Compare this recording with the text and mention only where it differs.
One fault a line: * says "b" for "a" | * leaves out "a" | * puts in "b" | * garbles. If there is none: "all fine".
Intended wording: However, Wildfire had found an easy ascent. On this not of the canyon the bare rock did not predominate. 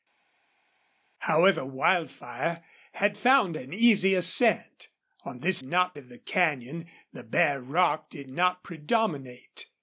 all fine